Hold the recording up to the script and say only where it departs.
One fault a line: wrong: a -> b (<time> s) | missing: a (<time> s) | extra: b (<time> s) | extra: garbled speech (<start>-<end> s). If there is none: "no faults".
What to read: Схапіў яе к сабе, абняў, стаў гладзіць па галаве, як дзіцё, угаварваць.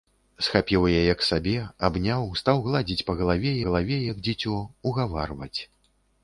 extra: галаве (3.7 s)